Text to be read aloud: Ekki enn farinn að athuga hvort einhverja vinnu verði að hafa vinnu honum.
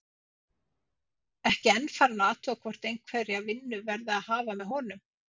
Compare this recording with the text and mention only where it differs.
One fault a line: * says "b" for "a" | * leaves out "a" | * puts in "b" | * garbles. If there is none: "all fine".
* says "með" for "vinnu"